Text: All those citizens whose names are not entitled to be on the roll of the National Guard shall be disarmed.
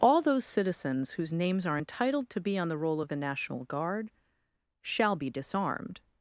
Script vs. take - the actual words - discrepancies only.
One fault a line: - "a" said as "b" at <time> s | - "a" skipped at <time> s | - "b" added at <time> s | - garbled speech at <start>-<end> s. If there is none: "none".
- "not" skipped at 1.8 s